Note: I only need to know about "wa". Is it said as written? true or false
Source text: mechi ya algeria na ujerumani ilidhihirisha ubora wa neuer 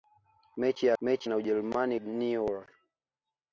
false